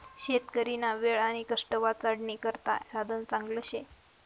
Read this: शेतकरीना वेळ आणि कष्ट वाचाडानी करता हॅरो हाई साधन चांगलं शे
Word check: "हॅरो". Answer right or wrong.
wrong